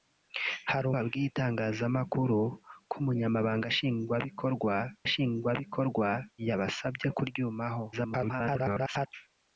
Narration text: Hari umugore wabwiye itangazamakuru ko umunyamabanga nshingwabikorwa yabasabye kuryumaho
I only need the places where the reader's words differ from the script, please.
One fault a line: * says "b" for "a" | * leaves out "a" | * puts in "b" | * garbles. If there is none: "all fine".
* leaves out "umugore"
* puts in "nshingwabikorwa"
* garbles